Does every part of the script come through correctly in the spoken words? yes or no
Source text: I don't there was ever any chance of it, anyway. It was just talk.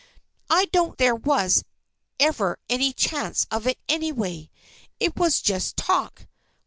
yes